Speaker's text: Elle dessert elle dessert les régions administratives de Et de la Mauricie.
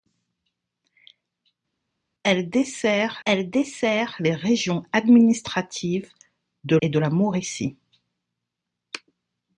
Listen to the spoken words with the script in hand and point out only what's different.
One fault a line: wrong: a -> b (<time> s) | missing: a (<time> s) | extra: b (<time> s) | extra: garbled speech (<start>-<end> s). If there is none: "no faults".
no faults